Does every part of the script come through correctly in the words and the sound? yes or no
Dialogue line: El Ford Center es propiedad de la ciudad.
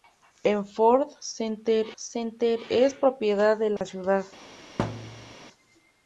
no